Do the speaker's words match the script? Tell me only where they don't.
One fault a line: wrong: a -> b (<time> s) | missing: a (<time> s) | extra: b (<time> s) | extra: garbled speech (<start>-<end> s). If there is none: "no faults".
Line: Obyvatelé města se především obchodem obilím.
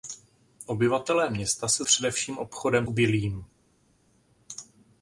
no faults